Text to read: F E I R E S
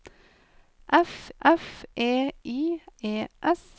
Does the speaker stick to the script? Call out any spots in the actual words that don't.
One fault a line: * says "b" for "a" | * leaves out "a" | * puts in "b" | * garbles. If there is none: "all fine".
* puts in "f"
* leaves out "R"